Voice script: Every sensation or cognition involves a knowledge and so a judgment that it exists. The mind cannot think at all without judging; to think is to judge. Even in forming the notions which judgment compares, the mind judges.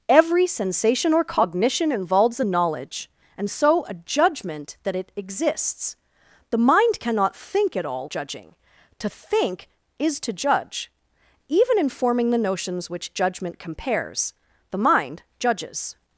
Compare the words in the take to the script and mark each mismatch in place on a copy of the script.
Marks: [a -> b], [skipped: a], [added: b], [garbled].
Every sensation or cognition involves a knowledge and so a judgment that it exists. The mind cannot think at all [skipped: without] judging; to think is to judge. Even in forming the notions which judgment compares, the mind judges.